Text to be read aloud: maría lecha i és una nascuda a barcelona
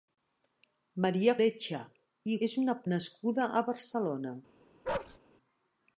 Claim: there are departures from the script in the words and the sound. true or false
true